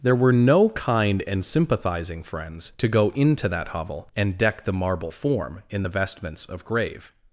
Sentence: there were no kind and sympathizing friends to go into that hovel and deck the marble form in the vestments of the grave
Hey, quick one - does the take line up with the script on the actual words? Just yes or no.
no